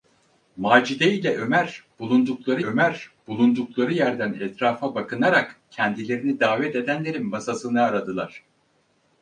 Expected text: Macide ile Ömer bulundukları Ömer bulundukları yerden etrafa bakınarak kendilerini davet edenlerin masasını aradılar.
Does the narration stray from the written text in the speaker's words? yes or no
no